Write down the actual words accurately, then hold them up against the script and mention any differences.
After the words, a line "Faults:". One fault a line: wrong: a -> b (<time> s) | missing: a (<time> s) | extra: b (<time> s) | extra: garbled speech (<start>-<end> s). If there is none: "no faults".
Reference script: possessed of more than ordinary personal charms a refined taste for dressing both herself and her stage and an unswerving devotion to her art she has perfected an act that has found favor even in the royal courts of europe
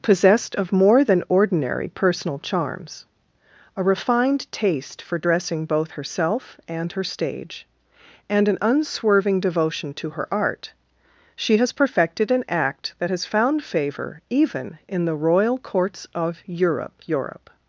possessed of more than ordinary personal charms a refined taste for dressing both herself and her stage and an unswerving devotion to her art she has perfected an act that has found favor even in the royal courts of europe europe
Faults:
extra: europe (17.1 s)